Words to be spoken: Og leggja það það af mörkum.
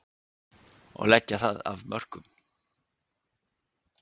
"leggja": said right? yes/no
yes